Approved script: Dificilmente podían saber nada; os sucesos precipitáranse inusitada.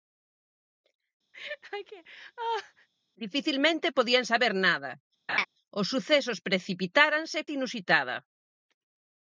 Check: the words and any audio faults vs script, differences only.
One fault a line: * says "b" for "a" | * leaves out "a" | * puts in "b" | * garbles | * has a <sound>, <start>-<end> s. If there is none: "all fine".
* has a laugh, 1.3-2.9 s
* has a laugh, 5.3-5.5 s